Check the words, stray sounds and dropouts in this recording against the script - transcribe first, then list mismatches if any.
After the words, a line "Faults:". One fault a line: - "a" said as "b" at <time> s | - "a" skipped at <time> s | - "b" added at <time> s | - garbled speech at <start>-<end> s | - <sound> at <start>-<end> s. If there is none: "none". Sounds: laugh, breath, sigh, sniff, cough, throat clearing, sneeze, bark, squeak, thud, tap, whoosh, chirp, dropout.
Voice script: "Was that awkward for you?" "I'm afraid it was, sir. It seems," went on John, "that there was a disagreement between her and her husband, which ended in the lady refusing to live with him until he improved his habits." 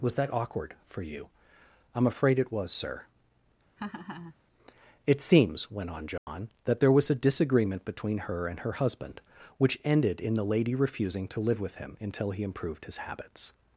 "Was that awkward for you?" "I'm afraid it was, sir. It seems," went on John, "that there was a disagreement between her and her husband, which ended in the lady refusing to live with him until he improved his habits."
Faults:
- laugh at 3.8-4.3 s
- dropout at 6.2-6.3 s